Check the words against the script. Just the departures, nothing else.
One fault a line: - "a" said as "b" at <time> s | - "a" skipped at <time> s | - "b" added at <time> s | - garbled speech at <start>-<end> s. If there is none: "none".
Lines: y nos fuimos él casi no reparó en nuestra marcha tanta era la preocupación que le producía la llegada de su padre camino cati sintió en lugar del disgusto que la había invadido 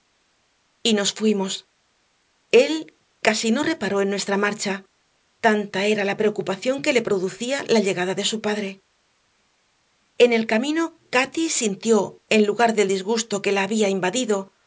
- "en el" added at 10.2 s